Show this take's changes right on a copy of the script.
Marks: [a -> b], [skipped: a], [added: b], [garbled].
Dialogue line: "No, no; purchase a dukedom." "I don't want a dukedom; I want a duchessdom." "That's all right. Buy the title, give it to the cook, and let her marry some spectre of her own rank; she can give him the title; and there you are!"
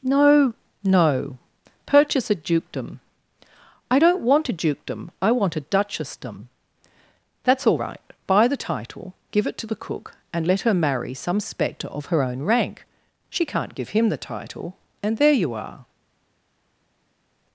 "No, no; purchase a dukedom." "I don't want a dukedom; I want a duchessdom." "That's all right. Buy the title, give it to the cook, and let her marry some spectre of her own rank; she [can -> can't] give him the title; and there you are!"